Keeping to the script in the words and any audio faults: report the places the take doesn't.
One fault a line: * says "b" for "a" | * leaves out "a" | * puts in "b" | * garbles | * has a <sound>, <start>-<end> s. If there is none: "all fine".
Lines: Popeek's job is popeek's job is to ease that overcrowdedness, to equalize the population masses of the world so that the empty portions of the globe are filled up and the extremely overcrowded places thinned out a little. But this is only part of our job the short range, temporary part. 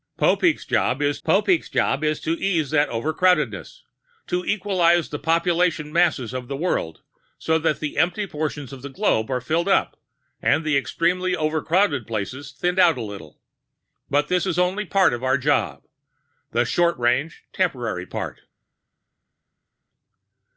all fine